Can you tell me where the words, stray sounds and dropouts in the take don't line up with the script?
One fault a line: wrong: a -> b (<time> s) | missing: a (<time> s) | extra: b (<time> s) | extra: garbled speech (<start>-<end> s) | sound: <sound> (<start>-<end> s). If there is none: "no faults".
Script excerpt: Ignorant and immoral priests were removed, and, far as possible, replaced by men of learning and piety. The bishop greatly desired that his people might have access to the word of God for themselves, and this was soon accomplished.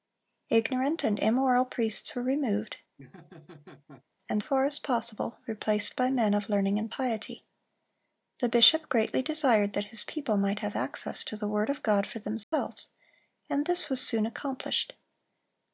sound: laugh (3.0-4.0 s)
sound: dropout (12.4-12.5 s)